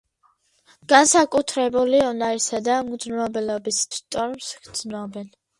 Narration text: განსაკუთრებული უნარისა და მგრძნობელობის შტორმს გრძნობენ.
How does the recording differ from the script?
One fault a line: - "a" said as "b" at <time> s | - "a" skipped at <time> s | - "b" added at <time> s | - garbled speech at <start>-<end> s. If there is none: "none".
none